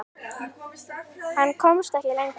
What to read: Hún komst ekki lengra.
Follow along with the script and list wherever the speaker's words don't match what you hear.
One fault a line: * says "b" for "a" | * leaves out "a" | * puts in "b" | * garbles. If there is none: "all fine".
* says "Hann" for "Hún"